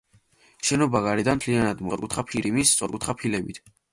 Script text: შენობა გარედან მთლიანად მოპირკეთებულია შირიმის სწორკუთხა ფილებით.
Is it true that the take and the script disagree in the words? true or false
true